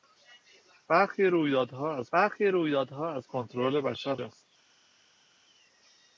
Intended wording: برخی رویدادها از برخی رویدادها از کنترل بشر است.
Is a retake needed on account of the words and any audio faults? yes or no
no